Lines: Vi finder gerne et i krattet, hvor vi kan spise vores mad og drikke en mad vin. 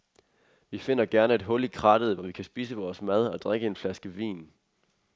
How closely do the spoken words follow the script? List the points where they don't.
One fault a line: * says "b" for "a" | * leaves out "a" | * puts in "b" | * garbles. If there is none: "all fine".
* puts in "hul"
* says "flaske" for "mad"